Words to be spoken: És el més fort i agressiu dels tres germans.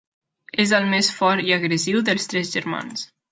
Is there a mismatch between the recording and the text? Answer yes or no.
no